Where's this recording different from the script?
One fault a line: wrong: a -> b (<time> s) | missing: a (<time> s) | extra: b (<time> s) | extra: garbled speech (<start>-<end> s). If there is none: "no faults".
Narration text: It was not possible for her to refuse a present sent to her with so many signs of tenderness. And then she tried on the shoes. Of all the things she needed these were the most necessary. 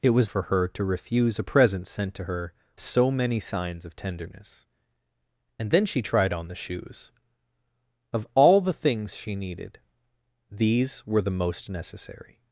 missing: not possible (0.3 s)
missing: with (2.5 s)